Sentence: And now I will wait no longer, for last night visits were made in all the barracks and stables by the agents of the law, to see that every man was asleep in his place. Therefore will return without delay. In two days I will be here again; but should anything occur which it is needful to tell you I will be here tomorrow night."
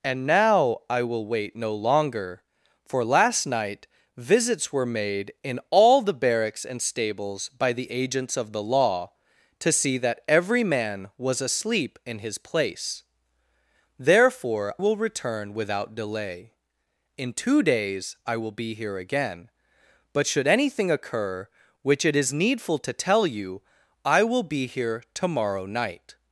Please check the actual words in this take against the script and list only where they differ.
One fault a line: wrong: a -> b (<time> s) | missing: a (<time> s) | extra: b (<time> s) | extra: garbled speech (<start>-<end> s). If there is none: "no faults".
no faults